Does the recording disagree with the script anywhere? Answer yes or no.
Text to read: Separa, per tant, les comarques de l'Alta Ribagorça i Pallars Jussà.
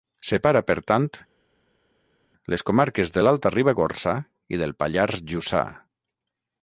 yes